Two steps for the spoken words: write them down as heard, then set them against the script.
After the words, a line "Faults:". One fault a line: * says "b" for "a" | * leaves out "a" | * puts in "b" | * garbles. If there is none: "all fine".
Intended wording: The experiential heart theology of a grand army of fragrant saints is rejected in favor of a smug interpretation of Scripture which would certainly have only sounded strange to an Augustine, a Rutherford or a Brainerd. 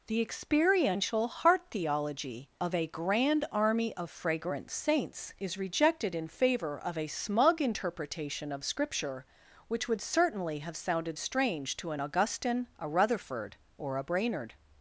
The experiential heart theology of a grand army of fragrant saints is rejected in favor of a smug interpretation of Scripture which would certainly have sounded strange to an Augustine, a Rutherford or a Brainerd.
Faults:
* leaves out "only"